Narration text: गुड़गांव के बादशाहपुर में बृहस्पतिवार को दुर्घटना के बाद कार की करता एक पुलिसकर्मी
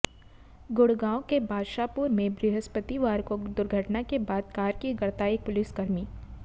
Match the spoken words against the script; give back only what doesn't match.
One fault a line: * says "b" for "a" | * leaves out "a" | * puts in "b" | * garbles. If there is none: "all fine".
all fine